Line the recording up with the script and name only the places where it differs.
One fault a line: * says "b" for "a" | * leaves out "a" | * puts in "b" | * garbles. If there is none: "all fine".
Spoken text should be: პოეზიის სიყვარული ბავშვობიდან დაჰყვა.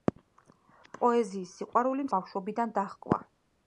all fine